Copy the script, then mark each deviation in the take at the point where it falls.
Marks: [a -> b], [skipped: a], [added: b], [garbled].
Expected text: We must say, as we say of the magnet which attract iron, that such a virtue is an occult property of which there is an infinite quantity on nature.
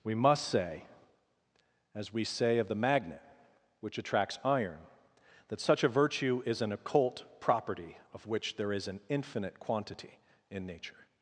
We must say, as we say of the magnet which [attract -> attracts] iron, that such a virtue is an occult property of which there is an infinite quantity [on -> in] nature.